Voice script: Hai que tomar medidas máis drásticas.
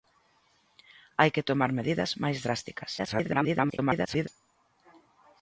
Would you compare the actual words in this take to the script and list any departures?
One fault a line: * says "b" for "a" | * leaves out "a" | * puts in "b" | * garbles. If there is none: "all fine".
* garbles